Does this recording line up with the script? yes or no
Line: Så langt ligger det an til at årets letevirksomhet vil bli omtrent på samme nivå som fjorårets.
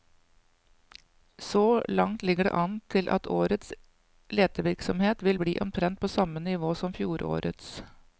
yes